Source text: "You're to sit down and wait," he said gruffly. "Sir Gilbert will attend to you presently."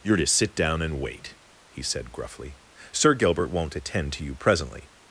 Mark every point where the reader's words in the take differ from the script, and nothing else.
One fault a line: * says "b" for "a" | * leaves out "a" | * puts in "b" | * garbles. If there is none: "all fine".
* says "won't" for "will"